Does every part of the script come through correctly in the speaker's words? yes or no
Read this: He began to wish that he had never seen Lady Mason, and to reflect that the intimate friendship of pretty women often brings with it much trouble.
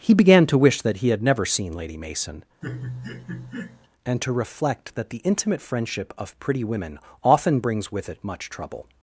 yes